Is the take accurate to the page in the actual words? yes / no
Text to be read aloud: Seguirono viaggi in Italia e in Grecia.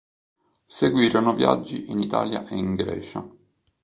yes